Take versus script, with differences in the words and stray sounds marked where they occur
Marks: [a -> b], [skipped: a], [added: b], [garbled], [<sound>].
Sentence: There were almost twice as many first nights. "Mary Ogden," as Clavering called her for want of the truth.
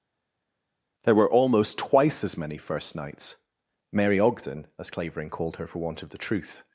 There were almost twice as many first nights. "Mary Ogden," as Clavering called her for want of the truth.